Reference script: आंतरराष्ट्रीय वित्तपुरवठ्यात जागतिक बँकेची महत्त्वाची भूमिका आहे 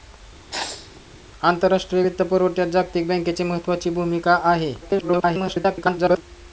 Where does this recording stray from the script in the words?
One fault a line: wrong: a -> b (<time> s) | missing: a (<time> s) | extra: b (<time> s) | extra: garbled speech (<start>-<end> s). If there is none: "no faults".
extra: garbled speech (4.8-6.2 s)